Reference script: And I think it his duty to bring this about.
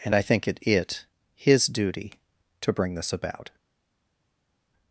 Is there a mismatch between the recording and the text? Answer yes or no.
yes